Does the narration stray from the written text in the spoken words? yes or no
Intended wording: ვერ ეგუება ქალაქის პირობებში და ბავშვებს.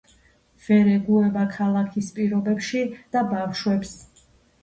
no